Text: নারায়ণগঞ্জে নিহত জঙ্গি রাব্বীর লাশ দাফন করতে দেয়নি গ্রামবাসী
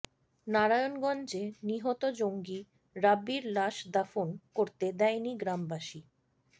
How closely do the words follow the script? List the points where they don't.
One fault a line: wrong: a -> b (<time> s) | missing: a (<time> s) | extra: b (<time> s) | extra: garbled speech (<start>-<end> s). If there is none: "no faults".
no faults